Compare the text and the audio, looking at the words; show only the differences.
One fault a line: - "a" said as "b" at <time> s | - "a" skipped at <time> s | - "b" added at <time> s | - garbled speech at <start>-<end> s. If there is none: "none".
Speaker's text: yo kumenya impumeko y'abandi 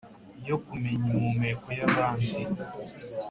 none